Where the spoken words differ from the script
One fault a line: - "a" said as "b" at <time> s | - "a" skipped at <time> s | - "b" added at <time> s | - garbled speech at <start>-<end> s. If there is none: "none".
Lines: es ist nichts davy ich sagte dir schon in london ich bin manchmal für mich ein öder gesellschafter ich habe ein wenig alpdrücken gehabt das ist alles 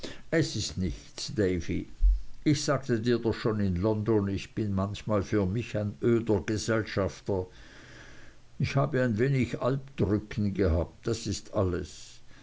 - "doch" added at 3.2 s